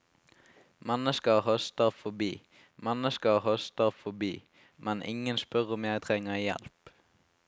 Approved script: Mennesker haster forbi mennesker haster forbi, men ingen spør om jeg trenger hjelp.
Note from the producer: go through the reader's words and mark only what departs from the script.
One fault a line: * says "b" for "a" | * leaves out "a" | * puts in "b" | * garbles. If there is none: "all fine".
all fine